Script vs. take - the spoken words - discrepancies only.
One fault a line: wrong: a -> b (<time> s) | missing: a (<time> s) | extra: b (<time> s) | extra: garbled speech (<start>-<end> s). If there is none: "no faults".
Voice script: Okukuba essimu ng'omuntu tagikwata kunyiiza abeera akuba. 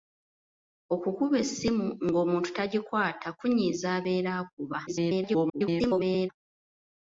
extra: garbled speech (4.9-6.3 s)